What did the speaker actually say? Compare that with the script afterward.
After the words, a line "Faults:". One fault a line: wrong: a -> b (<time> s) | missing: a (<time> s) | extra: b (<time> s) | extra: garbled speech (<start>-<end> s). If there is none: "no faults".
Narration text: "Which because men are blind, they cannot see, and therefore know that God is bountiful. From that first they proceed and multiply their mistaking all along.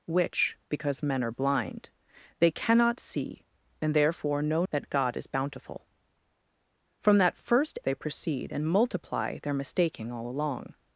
"Which because men are blind, they cannot see, and therefore know that God is bountiful. From that first they proceed and multiply their mistaking all along.
Faults:
no faults